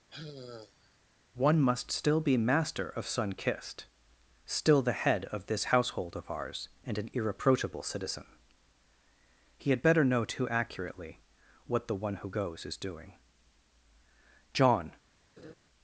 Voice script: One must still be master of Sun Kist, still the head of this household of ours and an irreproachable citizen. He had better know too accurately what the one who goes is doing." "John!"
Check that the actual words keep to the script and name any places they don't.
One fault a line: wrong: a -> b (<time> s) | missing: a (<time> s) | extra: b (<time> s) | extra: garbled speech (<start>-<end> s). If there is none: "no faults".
no faults